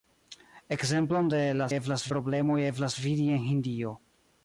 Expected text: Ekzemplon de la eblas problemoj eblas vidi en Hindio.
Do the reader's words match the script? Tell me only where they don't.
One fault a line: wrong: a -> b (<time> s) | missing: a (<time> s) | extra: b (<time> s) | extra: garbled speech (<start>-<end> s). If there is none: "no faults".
no faults